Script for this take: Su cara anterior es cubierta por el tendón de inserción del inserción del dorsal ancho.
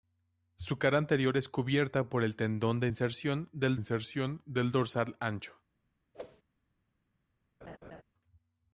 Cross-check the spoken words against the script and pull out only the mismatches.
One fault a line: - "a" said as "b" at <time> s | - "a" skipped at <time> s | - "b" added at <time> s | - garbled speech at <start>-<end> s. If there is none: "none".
none